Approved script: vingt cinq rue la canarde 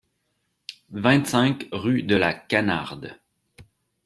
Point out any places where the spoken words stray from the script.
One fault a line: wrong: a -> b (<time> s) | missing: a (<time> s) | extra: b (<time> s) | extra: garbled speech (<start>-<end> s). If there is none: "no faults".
extra: de (2.0 s)